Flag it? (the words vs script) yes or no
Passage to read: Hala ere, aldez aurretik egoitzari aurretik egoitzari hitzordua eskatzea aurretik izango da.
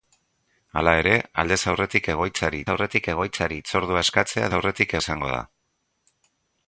no